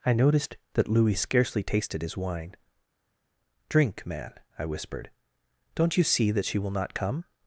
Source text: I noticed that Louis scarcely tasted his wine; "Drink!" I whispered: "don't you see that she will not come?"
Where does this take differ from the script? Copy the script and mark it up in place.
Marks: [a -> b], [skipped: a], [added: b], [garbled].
I noticed that Louis scarcely tasted his wine; "Drink!" [added: man] I whispered: "don't you see that she will not come?"